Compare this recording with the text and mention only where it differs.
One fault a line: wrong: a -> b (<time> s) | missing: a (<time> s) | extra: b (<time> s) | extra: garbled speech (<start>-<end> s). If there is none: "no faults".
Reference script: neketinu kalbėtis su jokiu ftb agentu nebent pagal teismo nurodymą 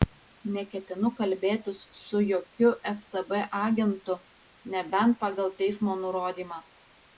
no faults